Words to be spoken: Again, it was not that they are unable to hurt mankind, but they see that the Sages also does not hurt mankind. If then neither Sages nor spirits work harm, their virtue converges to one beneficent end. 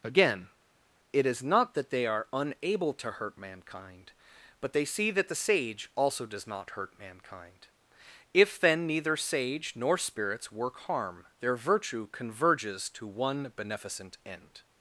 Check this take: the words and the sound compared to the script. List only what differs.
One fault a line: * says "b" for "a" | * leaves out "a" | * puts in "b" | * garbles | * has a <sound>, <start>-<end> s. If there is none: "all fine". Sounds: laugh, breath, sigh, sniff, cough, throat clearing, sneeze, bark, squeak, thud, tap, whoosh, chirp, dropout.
* says "is" for "was"
* says "Sage" for "Sages"
* says "Sage" for "Sages"